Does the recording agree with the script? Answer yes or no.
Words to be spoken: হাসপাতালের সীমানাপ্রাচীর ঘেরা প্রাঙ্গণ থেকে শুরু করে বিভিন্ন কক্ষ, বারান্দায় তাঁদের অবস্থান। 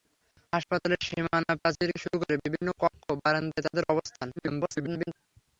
no